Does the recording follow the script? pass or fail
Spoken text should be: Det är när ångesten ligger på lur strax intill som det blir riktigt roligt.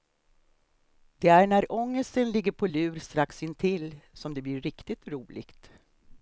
pass